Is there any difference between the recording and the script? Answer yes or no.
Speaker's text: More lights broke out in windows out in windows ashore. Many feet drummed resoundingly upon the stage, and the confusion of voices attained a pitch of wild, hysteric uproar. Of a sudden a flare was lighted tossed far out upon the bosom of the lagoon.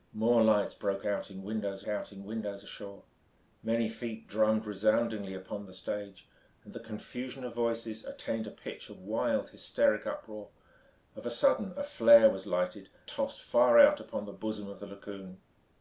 no